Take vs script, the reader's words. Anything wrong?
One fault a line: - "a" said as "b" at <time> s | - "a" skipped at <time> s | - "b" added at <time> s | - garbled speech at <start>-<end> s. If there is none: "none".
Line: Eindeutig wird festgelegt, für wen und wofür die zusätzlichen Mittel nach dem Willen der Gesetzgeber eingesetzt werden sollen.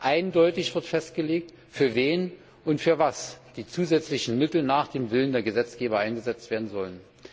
none